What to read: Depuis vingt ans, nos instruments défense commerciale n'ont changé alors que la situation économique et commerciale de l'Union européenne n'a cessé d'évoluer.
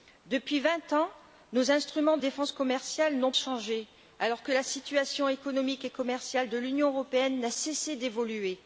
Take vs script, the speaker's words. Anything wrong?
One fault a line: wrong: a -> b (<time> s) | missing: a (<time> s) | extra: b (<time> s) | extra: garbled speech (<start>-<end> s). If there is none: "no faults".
no faults